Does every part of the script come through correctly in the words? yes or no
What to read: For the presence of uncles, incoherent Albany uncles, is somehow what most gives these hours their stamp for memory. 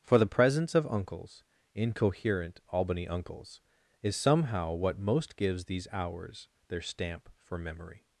yes